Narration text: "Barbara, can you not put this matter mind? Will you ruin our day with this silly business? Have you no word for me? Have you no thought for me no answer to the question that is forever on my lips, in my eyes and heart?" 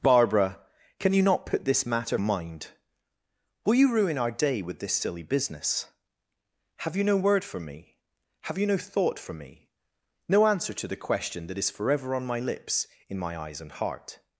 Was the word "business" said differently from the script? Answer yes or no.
no